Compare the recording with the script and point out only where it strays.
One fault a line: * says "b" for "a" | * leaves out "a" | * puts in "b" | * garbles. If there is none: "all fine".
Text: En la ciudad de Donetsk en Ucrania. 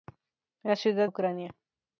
* leaves out "de Donetsk en"